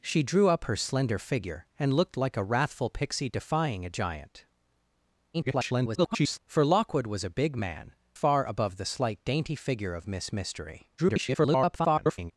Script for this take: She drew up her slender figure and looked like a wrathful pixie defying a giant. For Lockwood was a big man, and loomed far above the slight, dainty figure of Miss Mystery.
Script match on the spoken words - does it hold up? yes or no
no